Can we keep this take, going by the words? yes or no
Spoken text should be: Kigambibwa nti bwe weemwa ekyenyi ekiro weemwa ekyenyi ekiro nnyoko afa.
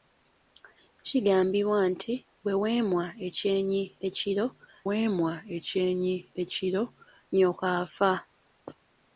yes